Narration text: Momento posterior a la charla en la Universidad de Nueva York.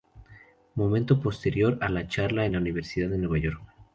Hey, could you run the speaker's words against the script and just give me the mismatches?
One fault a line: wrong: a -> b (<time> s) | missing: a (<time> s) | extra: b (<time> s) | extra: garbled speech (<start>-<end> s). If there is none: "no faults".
no faults